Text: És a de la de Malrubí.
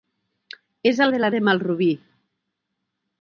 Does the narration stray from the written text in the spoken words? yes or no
no